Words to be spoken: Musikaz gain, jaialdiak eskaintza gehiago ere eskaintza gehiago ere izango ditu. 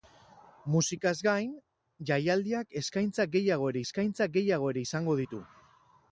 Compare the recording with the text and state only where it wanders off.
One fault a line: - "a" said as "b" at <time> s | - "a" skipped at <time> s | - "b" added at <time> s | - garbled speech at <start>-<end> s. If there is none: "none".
none